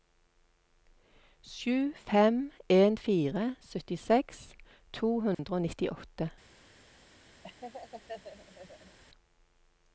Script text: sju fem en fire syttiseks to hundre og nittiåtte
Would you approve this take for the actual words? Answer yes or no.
yes